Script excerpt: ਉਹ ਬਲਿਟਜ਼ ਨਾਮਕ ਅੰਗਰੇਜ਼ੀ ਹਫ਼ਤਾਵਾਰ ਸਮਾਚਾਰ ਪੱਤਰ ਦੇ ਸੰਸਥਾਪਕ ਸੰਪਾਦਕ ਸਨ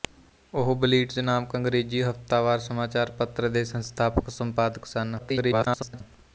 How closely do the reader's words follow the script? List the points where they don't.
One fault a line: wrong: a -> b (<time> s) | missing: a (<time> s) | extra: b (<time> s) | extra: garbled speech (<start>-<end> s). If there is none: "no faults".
extra: garbled speech (5.2-6.0 s)